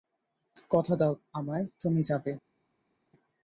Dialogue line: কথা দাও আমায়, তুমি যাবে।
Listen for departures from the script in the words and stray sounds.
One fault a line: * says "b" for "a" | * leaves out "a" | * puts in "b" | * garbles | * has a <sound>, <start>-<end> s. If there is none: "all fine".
all fine